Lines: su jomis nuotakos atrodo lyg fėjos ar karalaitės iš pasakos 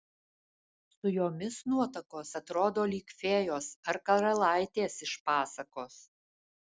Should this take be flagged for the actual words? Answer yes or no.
no